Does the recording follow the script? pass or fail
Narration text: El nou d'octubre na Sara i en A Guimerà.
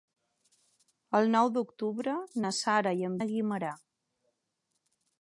pass